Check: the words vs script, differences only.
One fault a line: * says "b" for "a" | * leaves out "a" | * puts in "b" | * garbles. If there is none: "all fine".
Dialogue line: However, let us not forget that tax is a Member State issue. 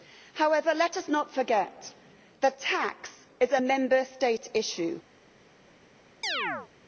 all fine